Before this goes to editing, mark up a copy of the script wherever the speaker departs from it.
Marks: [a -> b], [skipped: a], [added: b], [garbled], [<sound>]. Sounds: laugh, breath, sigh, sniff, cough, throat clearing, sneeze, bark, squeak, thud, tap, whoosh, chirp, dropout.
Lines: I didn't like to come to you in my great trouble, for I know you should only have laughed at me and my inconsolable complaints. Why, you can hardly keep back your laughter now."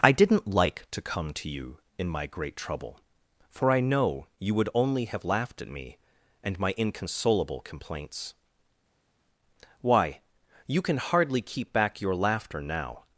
I didn't like to come to you in my great trouble, for I know you [should -> would] only have laughed at me and my inconsolable complaints. Why, you can hardly keep back your laughter now."